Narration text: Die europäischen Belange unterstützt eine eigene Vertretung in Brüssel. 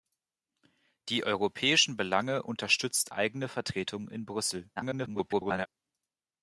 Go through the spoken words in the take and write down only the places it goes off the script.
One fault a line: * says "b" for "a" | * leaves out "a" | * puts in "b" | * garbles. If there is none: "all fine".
* leaves out "eine"
* garbles